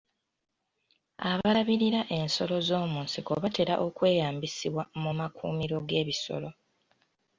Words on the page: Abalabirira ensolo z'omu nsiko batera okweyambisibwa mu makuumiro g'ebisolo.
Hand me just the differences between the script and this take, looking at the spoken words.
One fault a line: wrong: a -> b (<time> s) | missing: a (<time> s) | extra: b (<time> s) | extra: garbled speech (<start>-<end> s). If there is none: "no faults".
no faults